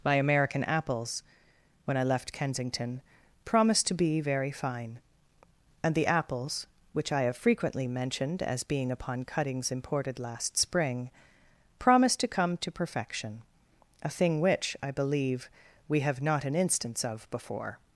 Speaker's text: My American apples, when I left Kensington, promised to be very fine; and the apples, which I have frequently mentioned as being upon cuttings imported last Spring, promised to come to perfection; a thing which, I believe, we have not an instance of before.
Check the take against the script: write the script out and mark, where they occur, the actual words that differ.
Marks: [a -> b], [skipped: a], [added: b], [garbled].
My American apples, when I left Kensington, promised to be very fine; and the apples, which I have frequently mentioned as being upon cuttings imported last Spring, promised to come to perfection; a thing which, I believe, we have not an instance of before.